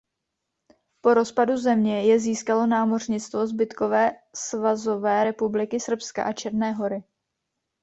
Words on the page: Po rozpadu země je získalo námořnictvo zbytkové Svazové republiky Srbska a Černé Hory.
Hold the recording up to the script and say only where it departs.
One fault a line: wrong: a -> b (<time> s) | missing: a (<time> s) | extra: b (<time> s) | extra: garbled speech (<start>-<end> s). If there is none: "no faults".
no faults